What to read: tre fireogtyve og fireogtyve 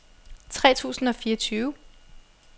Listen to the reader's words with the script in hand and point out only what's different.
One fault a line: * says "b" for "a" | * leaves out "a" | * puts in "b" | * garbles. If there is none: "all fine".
* says "tusind" for "fireogtyve"